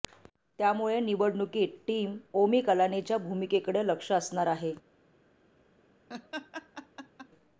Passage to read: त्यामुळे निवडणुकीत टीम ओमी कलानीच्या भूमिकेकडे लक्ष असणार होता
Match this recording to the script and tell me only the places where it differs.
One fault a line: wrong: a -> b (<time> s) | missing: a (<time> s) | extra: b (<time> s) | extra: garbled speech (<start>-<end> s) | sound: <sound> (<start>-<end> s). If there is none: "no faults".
wrong: होता -> आहे (4.5 s)
sound: laugh (6.1-7.3 s)